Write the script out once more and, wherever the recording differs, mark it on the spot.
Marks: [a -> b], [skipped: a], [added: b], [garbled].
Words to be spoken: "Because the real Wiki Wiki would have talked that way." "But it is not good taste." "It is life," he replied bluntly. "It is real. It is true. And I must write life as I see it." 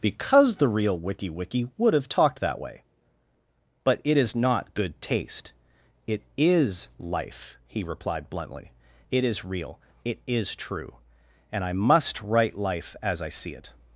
"Because the real Wiki Wiki would have talked that way." "But it is not good taste." "It is life," he replied bluntly. "It is real. It is true. And I must write life as I see it."